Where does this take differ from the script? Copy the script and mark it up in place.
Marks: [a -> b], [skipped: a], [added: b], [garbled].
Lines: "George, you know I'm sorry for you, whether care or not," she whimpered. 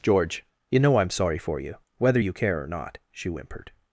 "George, you know I'm sorry for you, whether [added: you] care or not," she whimpered.